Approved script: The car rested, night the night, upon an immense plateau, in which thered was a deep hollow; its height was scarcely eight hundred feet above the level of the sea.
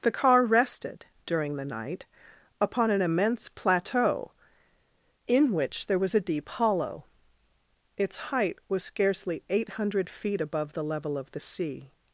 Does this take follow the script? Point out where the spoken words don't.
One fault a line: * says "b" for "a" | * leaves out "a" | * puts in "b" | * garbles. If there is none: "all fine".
* says "during" for "night"
* says "there" for "thered"